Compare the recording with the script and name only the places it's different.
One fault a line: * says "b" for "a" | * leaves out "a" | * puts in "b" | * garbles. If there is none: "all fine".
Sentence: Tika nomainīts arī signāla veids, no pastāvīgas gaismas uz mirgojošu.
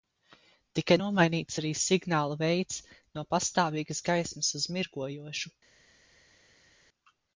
all fine